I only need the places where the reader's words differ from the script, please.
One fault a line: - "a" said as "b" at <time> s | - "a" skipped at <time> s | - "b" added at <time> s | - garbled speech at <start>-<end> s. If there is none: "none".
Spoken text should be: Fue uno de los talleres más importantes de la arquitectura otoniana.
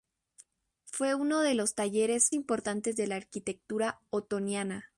- "más" skipped at 2.4 s